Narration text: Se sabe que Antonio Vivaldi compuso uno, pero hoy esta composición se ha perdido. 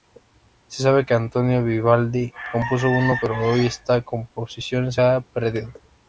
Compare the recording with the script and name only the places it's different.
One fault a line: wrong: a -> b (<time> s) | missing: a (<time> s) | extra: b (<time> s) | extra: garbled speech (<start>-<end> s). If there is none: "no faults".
no faults